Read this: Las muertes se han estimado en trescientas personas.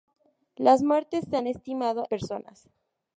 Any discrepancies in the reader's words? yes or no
yes